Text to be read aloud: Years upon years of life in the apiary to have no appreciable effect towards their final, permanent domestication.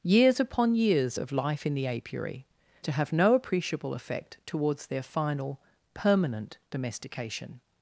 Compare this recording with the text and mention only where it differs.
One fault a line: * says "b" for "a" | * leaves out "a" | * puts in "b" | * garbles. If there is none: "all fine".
all fine